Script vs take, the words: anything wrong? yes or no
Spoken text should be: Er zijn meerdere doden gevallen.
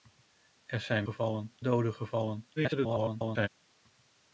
yes